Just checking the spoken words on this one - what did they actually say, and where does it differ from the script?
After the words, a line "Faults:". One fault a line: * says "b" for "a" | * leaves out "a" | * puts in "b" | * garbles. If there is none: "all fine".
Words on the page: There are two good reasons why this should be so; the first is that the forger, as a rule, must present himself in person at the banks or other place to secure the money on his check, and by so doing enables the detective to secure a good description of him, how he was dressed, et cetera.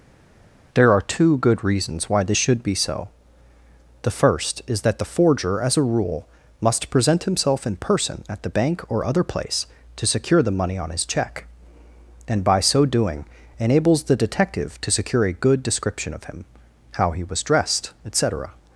There are two good reasons why this should be so; the first is that the forger, as a rule, must present himself in person at the bank or other place to secure the money on his check, and by so doing enables the detective to secure a good description of him, how he was dressed, et cetera.
Faults:
* says "bank" for "banks"